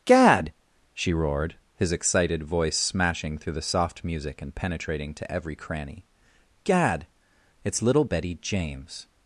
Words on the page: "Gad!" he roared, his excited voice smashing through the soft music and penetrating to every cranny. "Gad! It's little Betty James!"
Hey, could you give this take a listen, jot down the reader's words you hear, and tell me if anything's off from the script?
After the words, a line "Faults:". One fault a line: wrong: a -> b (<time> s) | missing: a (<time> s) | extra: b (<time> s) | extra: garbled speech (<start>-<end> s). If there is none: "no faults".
"Gad!" she roared, his excited voice smashing through the soft music and penetrating to every cranny. "Gad! It's little Betty James!"
Faults:
wrong: he -> she (0.9 s)